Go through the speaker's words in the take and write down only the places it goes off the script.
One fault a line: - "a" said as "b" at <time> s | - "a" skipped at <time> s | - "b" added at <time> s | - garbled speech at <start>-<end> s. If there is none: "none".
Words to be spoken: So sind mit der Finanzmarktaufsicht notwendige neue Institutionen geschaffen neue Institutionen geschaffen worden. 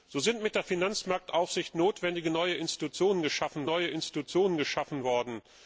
none